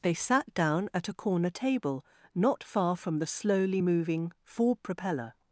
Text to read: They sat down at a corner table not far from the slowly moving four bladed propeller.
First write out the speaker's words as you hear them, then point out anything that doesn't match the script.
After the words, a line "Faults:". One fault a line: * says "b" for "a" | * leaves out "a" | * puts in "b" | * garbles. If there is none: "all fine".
They sat down at a corner table not far from the slowly moving four propeller.
Faults:
* leaves out "bladed"